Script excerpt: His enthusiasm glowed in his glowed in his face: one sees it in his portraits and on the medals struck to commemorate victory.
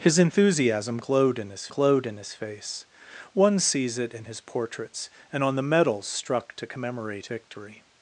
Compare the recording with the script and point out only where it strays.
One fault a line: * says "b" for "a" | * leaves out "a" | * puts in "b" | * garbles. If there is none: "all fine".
all fine